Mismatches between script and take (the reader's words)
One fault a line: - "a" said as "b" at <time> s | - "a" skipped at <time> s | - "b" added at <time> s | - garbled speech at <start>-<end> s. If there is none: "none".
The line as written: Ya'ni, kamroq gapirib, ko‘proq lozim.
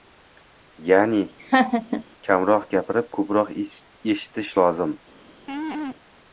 - "eshitish" added at 3.6 s